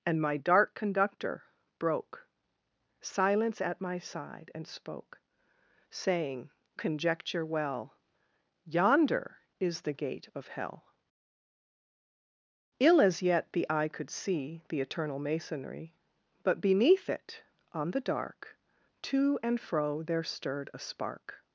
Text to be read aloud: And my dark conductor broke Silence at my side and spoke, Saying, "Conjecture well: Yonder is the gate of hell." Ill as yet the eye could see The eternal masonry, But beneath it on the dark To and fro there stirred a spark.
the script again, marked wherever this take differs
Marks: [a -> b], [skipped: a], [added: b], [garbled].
And my dark conductor broke Silence at my side and spoke, Saying, "Conjecture well: Yonder is the gate of hell." Ill as yet the eye could see The eternal masonry, But beneath it on the dark To and fro there stirred a spark.